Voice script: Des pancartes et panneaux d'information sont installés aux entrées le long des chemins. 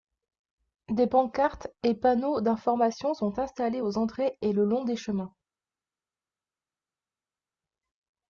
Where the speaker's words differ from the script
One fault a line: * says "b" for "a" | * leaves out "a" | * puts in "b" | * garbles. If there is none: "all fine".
* puts in "et"